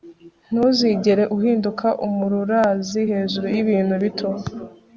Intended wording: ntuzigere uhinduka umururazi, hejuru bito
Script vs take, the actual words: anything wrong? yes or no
yes